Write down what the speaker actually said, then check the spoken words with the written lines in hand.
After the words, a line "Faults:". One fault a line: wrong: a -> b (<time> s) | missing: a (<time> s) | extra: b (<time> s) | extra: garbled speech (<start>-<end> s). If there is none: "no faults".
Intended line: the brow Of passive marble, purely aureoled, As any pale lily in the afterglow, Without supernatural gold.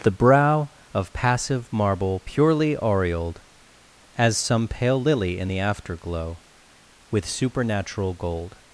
the brow Of passive marble, purely aureoled, As some pale lily in the afterglow, With supernatural gold.
Faults:
wrong: any -> some (4.4 s)
wrong: Without -> With (7.1 s)